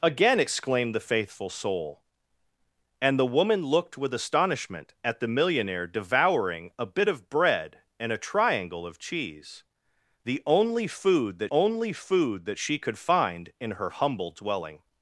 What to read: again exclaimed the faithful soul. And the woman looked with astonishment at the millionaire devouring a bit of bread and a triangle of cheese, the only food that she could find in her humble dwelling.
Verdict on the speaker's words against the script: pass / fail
fail